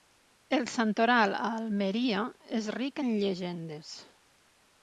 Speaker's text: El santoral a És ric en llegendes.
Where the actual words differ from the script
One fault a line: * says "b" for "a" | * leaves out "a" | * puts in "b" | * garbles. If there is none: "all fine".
* puts in "Almeria"